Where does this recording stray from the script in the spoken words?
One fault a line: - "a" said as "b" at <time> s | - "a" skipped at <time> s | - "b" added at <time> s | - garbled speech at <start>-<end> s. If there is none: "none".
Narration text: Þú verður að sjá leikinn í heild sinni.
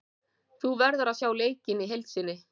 none